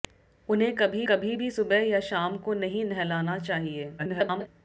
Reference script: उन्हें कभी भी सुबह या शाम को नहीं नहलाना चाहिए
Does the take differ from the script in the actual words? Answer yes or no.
yes